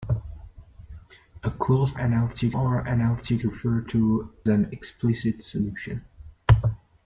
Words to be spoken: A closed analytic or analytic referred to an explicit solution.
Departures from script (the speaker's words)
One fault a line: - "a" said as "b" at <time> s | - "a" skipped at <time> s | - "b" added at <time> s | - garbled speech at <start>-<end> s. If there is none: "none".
none